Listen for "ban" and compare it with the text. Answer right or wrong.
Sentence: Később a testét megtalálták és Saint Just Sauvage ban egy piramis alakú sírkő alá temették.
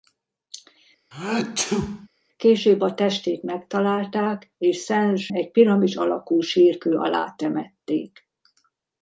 wrong